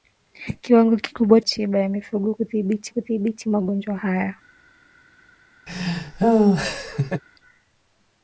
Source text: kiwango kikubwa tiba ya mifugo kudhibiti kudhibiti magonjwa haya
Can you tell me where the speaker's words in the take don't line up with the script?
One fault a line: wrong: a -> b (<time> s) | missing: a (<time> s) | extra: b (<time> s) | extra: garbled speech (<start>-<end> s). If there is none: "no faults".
no faults